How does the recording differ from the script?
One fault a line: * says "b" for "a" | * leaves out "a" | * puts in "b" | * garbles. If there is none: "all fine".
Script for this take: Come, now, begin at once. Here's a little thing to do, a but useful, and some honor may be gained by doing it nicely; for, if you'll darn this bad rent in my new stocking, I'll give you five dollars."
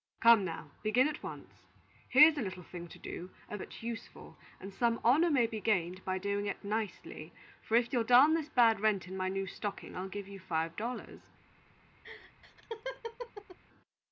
all fine